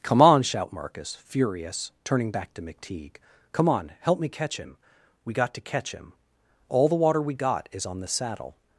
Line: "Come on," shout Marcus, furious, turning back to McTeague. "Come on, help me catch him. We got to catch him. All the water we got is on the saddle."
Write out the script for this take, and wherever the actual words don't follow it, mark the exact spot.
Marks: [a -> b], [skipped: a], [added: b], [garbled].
"Come on," shout Marcus, furious, turning back to McTeague. "Come on, help me catch him. We got to catch him. All the water we got is on the saddle."